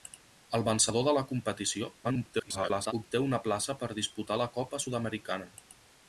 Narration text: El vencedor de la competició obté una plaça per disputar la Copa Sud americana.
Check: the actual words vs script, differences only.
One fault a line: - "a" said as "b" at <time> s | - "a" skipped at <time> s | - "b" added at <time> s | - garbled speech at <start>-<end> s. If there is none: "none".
- garbled speech at 2.0-2.9 s